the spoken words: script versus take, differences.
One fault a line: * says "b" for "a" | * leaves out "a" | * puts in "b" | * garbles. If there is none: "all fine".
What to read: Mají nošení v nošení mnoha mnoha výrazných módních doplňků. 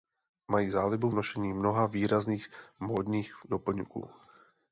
* says "zálibu" for "nošení"
* leaves out "mnoha"